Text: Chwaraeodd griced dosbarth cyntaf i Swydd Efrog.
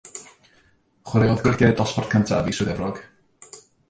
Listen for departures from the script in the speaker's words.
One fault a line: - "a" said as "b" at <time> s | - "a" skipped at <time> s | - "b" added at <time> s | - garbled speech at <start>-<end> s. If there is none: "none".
none